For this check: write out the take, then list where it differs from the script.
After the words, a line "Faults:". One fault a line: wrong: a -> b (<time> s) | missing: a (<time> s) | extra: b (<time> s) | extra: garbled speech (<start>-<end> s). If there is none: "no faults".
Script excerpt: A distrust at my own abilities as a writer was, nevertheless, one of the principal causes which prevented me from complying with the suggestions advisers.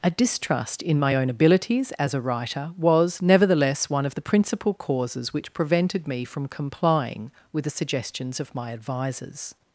A distrust in my own abilities as a writer was, nevertheless, one of the principal causes which prevented me from complying with the suggestions of my advisers.
Faults:
wrong: at -> in (0.8 s)
extra: of my (8.4 s)